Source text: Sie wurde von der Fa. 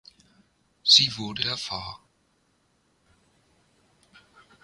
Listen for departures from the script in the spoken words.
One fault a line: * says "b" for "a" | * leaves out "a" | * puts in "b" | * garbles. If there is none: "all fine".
* leaves out "von"